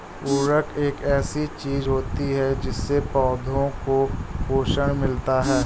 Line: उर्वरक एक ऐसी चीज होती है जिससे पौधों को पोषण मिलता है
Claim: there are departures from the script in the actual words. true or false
false